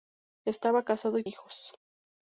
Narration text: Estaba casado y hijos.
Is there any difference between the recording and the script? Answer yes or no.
no